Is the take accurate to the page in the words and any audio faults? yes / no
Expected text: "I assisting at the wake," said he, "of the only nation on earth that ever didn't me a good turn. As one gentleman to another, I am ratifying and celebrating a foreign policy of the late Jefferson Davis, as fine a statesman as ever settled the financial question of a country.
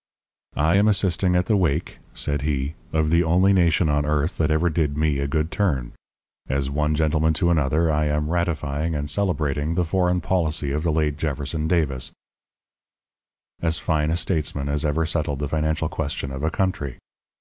no